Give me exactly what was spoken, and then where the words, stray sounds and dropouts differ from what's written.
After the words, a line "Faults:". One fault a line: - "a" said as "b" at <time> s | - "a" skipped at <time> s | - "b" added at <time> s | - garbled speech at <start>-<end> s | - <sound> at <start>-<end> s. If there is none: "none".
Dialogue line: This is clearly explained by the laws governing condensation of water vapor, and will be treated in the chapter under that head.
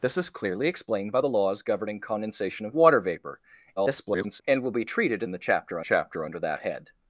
This is clearly explained by the laws governing condensation of water vapor, [garbled] and will be treated in the chapter chapter under that head.
Faults:
- garbled speech at 3.8-4.4 s
- "chapter" added at 5.8 s